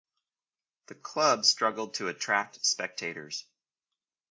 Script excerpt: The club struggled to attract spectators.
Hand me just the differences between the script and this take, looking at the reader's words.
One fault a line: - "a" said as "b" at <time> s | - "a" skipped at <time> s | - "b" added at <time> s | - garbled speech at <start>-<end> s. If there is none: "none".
none